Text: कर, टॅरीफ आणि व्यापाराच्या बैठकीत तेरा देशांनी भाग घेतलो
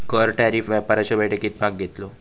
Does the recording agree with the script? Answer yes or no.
no